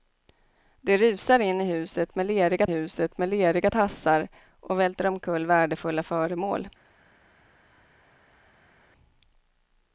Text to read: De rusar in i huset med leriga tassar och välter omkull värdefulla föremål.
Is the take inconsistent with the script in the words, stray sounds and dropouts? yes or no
yes